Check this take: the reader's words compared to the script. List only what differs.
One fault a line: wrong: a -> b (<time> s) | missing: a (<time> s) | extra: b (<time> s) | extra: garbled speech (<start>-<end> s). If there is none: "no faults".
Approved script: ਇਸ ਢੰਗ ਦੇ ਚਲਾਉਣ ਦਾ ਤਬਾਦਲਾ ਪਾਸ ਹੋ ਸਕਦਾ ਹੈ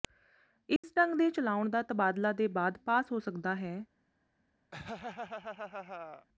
extra: ਦੇ ਬਾਅਦ (2.3 s)